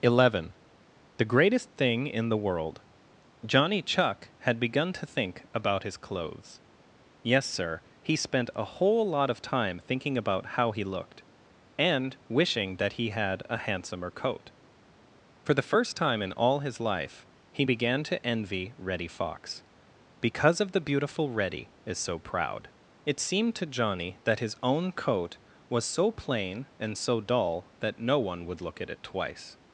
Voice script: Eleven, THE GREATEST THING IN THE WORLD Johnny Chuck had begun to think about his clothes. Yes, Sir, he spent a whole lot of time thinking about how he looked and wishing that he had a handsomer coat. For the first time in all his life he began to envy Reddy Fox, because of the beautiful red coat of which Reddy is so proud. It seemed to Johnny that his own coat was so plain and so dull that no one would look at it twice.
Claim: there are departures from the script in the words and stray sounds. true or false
true